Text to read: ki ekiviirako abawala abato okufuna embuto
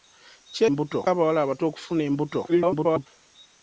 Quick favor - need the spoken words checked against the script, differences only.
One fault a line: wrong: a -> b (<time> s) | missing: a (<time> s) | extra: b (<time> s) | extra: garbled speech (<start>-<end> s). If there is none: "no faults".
wrong: ekiviirako -> embuto (0.7 s)
extra: garbled speech (2.5-3.1 s)